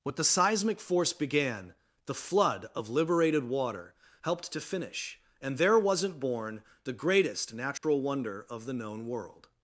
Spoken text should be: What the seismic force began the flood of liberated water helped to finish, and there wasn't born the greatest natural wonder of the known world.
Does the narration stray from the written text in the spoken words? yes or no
no